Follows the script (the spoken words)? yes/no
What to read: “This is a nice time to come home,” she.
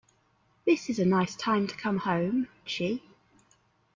yes